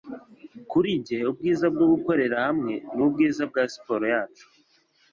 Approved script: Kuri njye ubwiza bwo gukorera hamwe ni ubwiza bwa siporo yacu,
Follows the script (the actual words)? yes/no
yes